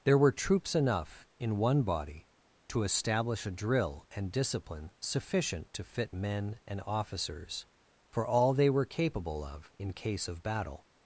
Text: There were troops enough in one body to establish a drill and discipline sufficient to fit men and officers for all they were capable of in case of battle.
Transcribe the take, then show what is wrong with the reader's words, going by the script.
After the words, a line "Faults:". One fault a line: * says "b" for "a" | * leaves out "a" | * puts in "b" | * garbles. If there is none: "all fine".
There were troops enough in one body to establish a drill and discipline sufficient to fit men and officers for all they were capable of in case of battle.
Faults:
all fine